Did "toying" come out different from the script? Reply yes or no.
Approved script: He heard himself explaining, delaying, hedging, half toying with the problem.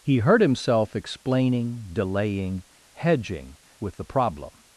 yes